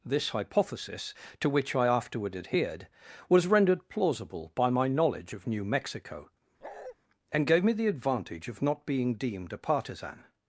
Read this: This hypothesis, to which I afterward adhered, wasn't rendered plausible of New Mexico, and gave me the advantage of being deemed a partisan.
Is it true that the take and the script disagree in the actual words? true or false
true